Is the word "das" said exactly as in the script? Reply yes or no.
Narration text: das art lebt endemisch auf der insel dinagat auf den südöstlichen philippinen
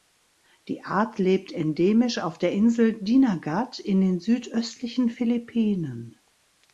no